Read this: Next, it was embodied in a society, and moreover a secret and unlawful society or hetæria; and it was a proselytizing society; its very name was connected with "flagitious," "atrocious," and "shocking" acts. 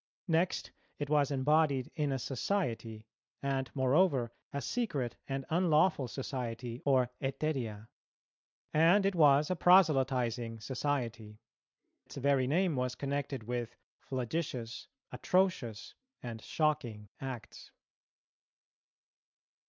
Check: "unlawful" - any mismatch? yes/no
no